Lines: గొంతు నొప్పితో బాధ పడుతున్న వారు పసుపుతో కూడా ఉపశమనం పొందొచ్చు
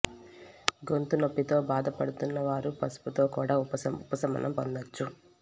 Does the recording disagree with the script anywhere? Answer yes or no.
no